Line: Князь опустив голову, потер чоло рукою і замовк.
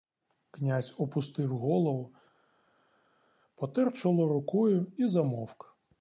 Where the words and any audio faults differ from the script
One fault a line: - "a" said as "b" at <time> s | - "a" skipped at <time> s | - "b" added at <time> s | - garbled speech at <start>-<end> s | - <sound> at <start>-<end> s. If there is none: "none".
none